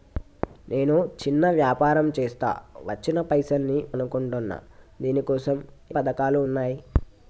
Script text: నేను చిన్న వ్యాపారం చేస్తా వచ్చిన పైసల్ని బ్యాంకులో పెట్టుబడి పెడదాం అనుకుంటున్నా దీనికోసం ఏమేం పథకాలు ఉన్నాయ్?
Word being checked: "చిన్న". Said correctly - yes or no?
yes